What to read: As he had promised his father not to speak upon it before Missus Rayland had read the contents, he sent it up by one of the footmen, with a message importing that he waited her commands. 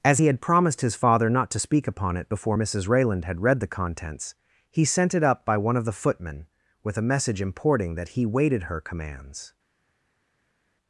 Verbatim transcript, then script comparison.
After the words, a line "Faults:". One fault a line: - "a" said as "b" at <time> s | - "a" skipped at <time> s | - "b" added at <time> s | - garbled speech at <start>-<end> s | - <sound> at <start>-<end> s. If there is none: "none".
As he had promised his father not to speak upon it before Missus Rayland had read the contents, he sent it up by one of the footmen, with a message importing that he waited her commands.
Faults:
none